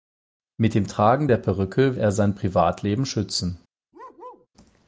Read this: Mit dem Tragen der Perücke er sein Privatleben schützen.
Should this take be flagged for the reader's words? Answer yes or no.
no